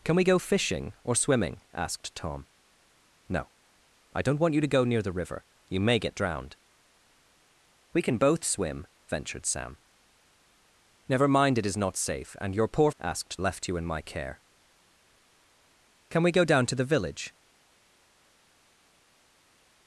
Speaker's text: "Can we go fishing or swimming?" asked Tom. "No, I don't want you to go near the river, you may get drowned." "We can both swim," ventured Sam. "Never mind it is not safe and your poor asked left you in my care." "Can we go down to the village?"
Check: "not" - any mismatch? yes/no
no